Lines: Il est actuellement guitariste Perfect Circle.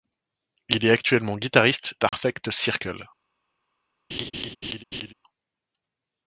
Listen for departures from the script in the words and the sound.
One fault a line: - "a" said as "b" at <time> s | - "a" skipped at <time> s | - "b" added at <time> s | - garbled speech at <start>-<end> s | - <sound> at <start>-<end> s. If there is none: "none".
- dropout at 2.1-2.1 s
- laugh at 4.1-5.1 s